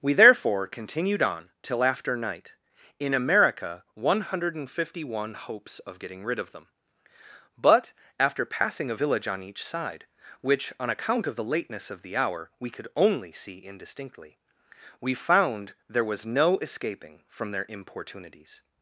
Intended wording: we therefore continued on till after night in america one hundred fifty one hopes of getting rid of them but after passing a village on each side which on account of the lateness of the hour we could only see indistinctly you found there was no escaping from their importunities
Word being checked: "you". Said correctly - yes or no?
no